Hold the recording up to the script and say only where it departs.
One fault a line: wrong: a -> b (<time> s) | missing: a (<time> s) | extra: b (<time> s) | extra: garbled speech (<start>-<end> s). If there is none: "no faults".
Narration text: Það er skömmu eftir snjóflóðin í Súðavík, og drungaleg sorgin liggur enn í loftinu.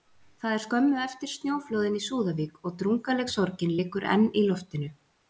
no faults